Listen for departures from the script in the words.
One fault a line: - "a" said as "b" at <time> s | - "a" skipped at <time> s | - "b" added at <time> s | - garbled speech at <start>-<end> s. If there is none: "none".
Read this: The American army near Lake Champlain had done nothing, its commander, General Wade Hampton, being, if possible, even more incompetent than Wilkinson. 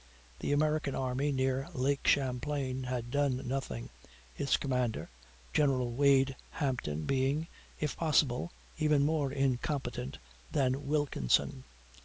none